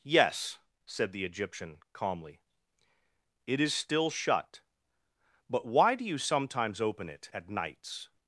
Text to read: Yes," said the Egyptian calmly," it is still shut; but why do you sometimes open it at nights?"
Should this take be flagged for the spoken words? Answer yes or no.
no